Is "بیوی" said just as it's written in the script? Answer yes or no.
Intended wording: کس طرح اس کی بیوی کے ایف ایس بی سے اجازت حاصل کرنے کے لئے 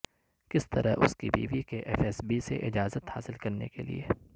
yes